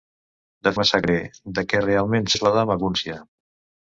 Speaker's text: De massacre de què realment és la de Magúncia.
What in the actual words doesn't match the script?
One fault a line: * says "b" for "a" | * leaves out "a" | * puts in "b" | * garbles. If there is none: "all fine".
all fine